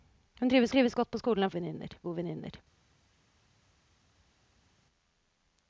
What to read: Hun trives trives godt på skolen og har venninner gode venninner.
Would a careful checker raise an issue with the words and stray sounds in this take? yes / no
no